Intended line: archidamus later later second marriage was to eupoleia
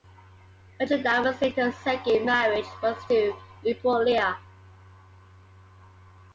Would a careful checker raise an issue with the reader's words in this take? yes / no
yes